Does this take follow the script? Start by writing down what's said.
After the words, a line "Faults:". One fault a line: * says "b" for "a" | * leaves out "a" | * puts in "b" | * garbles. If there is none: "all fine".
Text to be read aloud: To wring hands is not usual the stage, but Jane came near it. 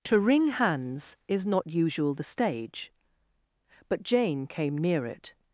To wring hands is not usual the stage, but Jane came near it.
Faults:
all fine